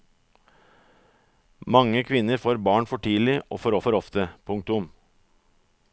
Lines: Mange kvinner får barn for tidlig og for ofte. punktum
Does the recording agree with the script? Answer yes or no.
no